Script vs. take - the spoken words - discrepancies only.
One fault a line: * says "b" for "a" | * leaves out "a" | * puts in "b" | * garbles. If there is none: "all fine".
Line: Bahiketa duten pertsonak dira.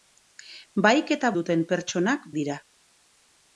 all fine